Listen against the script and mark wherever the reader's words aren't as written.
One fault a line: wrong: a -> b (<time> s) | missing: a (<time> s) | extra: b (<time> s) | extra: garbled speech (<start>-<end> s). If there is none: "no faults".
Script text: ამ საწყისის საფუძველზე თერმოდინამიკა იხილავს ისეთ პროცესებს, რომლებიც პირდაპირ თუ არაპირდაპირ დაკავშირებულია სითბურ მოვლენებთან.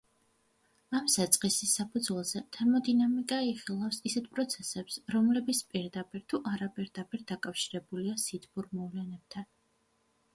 no faults